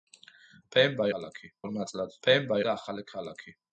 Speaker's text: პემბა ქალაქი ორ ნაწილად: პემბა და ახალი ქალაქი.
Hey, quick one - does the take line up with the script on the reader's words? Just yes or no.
yes